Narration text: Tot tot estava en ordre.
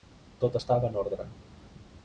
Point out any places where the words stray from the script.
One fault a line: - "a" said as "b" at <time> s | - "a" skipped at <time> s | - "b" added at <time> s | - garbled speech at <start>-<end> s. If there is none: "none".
- "tot" skipped at 0.6 s